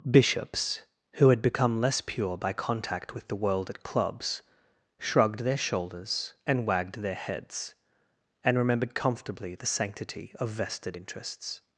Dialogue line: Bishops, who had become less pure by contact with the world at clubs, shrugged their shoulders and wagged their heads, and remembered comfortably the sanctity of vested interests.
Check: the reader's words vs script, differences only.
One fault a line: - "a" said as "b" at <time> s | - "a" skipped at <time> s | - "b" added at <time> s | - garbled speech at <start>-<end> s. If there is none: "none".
none